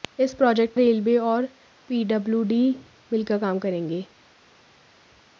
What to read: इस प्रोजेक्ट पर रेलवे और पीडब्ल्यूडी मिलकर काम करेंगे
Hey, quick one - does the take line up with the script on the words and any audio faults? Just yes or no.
no